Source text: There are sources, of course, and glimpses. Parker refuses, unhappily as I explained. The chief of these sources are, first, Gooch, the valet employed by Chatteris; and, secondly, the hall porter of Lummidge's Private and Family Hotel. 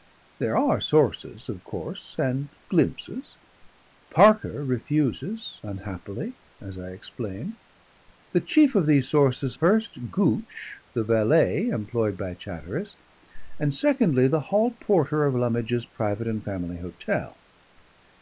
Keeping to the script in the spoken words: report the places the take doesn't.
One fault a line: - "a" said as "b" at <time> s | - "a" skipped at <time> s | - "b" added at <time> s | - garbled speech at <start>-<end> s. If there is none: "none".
- "are" skipped at 9.6 s